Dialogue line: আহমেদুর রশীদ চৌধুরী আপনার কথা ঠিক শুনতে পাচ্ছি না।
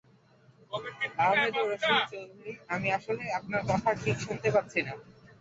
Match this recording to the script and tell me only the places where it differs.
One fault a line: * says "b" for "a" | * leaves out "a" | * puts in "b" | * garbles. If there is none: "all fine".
* puts in "আমি আসলে"